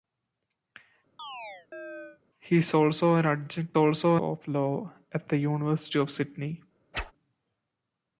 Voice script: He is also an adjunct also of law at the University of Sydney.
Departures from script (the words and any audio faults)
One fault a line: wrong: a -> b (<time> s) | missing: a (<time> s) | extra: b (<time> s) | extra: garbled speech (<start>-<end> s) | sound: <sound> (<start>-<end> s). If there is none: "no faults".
sound: chirp (1.2-2.2 s)
sound: whoosh (6.9-7.1 s)